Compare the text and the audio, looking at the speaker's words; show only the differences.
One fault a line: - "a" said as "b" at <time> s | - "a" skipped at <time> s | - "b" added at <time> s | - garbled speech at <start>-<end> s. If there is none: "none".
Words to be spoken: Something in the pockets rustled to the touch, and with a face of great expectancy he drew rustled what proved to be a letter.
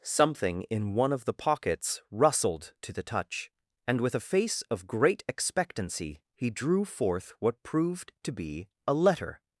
- "one of" added at 0.9 s
- "rustled" said as "forth" at 6.8 s